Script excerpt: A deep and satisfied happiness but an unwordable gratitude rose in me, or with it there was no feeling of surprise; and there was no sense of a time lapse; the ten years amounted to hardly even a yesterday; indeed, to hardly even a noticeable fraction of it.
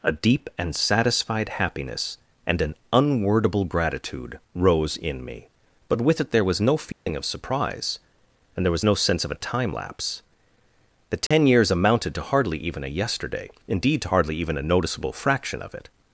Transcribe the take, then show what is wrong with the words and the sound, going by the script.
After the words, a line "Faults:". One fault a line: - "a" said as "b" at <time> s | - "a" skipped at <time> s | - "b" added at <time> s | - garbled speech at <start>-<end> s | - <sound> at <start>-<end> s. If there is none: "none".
A deep and satisfied happiness and an unwordable gratitude rose in me, but with it there was no feeling of surprise; and there was no sense of a time lapse; the ten years amounted to hardly even a yesterday; indeed, to hardly even a noticeable fraction of it.
Faults:
- "but" said as "and" at 2.5 s
- "or" said as "but" at 5.9 s
- dropout at 6.9-7.1 s
- dropout at 11.3-11.3 s